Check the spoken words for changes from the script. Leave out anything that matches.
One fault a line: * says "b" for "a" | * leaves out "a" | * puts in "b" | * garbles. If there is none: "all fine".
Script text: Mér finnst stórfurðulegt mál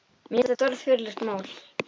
all fine